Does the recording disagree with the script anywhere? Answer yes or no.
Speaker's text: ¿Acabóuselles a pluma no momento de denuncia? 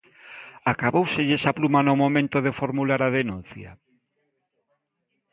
yes